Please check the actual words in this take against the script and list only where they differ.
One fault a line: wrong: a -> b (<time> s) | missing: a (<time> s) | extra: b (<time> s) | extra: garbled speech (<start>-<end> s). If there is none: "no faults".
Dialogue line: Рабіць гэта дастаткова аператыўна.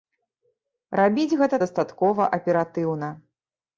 no faults